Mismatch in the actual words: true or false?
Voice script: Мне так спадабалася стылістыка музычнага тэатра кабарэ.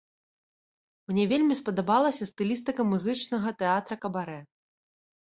true